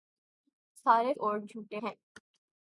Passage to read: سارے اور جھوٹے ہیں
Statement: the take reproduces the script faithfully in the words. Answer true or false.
true